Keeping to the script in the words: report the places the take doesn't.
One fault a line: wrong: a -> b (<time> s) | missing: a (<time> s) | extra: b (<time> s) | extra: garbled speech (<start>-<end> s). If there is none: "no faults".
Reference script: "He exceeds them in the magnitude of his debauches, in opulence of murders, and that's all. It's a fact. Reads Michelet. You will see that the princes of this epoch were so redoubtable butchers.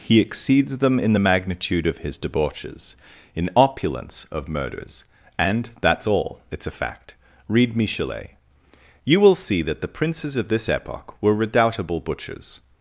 wrong: Reads -> Read (7.5 s)
missing: so (11.3 s)